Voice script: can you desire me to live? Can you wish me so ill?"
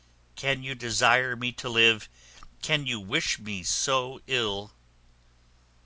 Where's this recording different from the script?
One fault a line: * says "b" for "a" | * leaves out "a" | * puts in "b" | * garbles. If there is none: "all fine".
all fine